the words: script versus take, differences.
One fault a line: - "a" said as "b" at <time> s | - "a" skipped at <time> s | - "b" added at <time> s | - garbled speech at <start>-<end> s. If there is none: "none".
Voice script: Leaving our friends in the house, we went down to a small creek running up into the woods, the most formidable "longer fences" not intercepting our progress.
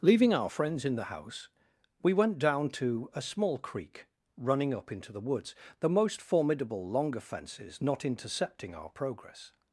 none